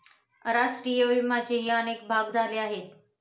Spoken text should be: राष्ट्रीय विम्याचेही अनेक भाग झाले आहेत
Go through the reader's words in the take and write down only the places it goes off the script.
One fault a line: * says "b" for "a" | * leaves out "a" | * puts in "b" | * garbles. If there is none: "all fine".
all fine